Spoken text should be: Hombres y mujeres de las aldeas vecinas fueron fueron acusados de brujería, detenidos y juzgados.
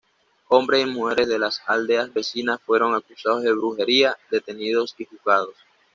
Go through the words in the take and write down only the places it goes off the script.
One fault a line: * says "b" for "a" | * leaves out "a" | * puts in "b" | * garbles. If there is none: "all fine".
* leaves out "fueron"